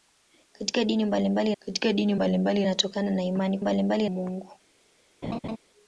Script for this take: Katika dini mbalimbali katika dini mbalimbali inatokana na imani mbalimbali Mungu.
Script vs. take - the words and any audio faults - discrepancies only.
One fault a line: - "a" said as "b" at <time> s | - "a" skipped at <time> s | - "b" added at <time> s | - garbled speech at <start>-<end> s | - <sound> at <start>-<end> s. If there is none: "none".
- laugh at 5.2-5.6 s